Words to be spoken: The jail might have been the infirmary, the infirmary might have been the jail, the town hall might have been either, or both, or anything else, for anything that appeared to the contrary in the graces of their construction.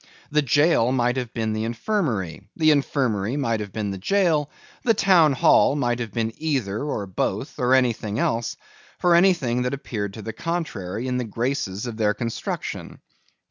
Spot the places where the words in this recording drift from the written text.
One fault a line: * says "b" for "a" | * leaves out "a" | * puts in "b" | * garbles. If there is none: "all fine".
all fine